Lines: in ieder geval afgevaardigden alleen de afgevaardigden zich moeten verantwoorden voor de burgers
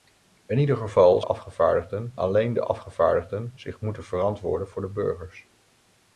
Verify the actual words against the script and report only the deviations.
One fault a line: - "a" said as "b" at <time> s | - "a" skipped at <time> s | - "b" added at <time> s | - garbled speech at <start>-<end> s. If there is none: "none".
none